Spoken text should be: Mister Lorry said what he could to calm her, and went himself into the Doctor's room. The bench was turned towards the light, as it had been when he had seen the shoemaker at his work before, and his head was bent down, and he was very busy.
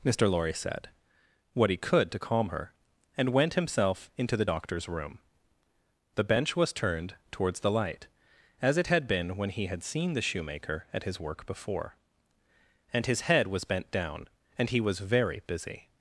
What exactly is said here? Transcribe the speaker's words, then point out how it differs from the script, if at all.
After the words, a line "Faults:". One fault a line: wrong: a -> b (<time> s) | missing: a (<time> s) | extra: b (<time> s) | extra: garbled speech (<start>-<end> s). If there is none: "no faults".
Mister Lorry said what he could to calm her, and went himself into the Doctor's room. The bench was turned towards the light, as it had been when he had seen the shoemaker at his work before, and his head was bent down, and he was very busy.
Faults:
no faults